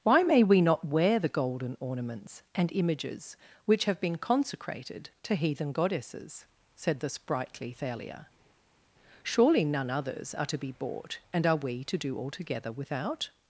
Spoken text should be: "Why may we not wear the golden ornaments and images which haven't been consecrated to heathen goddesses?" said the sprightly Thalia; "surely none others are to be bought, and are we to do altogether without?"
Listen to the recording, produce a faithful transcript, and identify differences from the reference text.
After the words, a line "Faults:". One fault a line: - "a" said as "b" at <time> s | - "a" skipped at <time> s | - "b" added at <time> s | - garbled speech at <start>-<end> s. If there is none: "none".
"Why may we not wear the golden ornaments and images which have been consecrated to heathen goddesses?" said the sprightly Thalia; "surely none others are to be bought, and are we to do altogether without?"
Faults:
- "haven't" said as "have" at 3.9 s